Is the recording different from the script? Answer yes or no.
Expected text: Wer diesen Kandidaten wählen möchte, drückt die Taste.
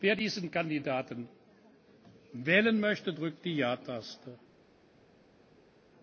yes